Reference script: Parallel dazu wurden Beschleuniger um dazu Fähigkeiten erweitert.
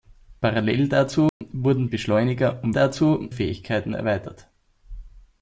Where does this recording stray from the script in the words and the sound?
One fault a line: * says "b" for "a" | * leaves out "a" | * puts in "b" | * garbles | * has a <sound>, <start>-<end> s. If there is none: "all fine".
* has a dropout, 1.3-1.4 s